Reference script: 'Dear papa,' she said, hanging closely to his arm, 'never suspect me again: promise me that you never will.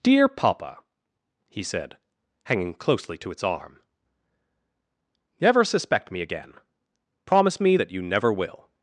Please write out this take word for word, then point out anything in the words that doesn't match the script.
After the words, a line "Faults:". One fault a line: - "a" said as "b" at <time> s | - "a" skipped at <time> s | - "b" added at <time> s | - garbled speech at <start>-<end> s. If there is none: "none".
'Dear papa,' he said, hanging closely to its arm, 'never suspect me again: promise me that you never will.
Faults:
- "she" said as "he" at 1.5 s
- "his" said as "its" at 3.3 s